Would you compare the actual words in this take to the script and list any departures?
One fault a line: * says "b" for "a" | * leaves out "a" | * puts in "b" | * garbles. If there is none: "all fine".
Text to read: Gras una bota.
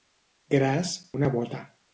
all fine